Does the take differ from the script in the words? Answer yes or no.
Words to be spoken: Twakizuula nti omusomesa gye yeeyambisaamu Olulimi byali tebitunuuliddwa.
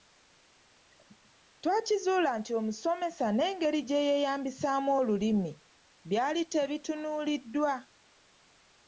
yes